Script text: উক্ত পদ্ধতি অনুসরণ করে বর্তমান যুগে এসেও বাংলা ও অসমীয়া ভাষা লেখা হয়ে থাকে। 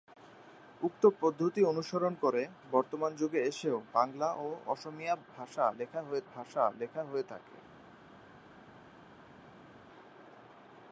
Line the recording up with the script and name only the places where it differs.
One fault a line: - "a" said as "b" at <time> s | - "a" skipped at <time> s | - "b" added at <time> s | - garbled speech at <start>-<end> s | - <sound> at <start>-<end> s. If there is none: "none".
- "ভাষা লেখা হয়ে" added at 6.3 s